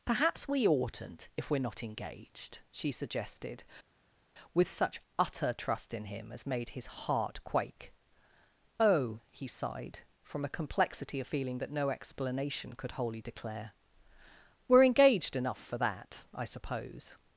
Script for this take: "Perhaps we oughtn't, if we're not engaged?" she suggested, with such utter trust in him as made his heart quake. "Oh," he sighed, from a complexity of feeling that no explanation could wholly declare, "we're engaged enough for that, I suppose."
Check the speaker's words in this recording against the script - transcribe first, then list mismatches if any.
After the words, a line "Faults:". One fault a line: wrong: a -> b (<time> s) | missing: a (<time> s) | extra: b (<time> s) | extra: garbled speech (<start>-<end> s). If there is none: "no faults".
"Perhaps we oughtn't, if we're not engaged?" she suggested, with such utter trust in him as made his heart quake. "Oh," he sighed, from a complexity of feeling that no explanation could wholly declare, "we're engaged enough for that, I suppose."
Faults:
no faults